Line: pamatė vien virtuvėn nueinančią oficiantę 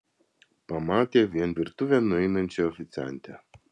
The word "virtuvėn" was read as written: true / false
true